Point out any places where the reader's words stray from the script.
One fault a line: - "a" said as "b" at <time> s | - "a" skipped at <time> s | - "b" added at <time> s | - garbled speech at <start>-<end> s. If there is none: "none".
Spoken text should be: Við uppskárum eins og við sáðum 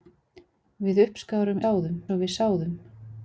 - "eins" said as "sáðum" at 1.6 s